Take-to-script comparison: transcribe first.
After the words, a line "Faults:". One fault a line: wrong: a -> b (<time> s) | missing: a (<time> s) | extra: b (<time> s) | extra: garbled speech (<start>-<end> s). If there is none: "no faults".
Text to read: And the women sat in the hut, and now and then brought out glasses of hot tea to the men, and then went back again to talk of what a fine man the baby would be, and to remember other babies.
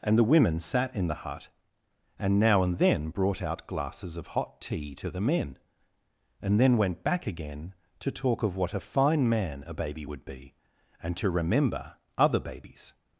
And the women sat in the hut, and now and then brought out glasses of hot tea to the men, and then went back again to talk of what a fine man a baby would be, and to remember other babies.
Faults:
wrong: the -> a (9.7 s)